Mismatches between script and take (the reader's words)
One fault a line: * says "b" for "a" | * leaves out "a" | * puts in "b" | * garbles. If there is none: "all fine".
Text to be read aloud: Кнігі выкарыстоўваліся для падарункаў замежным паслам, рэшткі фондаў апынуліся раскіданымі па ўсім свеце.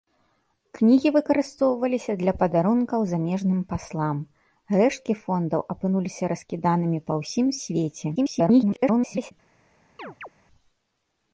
* garbles